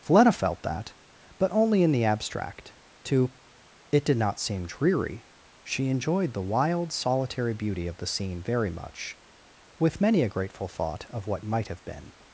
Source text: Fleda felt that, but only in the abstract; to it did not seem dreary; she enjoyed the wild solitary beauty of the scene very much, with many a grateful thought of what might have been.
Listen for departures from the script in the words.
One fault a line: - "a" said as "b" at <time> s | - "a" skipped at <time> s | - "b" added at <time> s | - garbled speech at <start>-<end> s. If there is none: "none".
none